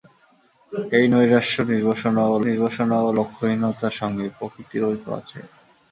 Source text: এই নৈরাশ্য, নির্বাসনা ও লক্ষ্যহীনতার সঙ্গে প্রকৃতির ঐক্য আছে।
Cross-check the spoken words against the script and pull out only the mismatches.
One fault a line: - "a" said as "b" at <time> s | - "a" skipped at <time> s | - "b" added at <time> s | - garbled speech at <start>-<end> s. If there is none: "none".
- "নির্বাসনা ও" added at 2.5 s